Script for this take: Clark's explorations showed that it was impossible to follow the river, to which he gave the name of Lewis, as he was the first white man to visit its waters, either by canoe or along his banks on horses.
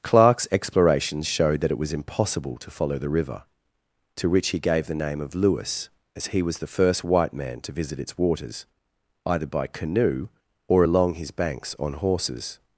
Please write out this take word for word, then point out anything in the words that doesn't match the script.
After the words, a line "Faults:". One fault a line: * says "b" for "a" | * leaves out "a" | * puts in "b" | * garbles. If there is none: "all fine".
Clark's explorations showed that it was impossible to follow the river, to which he gave the name of Lewis, as he was the first white man to visit its waters, either by canoe or along his banks on horses.
Faults:
all fine